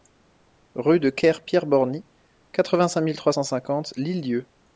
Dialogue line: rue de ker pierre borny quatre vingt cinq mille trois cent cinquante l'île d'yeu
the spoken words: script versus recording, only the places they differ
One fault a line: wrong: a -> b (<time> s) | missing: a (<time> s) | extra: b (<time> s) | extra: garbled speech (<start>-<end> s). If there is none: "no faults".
no faults